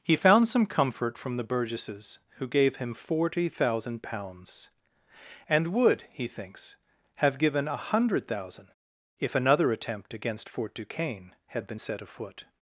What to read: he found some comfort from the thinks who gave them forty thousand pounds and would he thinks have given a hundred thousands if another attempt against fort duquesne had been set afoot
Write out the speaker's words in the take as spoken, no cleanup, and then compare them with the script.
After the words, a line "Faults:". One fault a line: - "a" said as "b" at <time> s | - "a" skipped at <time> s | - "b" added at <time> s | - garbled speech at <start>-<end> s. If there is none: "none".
he found some comfort from the burgesses who gave him forty thousand pounds and would he thinks have given a hundred thousand if another attempt against fort duquesne had been set afoot
Faults:
- "thinks" said as "burgesses" at 1.4 s
- "them" said as "him" at 2.8 s
- "thousands" said as "thousand" at 8.3 s